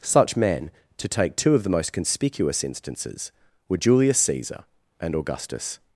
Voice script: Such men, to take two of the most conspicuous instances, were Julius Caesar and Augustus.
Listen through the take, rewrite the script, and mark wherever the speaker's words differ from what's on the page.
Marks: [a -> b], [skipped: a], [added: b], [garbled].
Such men, to take two of the most conspicuous instances, were Julius Caesar and Augustus.